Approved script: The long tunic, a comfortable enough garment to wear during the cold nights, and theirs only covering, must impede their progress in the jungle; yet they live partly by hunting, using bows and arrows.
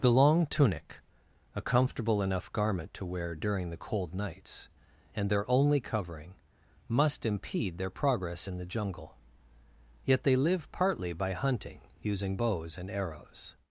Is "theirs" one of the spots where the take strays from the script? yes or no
yes